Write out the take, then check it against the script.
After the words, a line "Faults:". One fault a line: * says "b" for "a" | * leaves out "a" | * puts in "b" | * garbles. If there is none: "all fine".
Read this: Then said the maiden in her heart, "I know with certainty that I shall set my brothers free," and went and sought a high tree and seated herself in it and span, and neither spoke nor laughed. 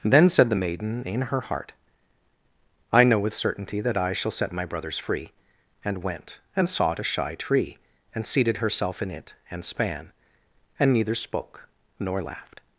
Then said the maiden in her heart, "I know with certainty that I shall set my brothers free," and went and sought a shy tree and seated herself in it and span, and neither spoke nor laughed.
Faults:
* says "shy" for "high"